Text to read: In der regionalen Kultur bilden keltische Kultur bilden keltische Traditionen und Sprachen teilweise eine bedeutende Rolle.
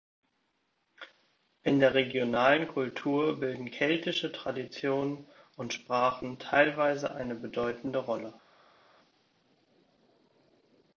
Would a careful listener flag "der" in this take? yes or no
no